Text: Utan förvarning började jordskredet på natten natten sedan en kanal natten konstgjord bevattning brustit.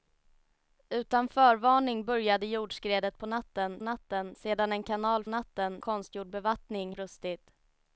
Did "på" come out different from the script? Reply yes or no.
no